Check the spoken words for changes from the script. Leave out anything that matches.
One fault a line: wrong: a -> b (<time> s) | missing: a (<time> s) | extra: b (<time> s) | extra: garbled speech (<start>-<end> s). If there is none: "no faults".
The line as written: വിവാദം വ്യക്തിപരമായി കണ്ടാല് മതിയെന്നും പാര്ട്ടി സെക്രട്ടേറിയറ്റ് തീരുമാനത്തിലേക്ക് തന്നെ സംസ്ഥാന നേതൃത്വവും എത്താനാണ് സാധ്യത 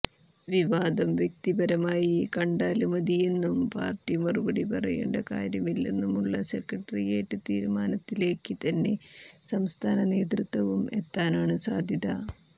extra: മറുപടി പറയേണ്ട കാര്യമില്ലെന്നുമുള്ള (4.2 s)